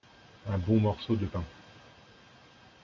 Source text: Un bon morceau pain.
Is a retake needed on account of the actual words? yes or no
yes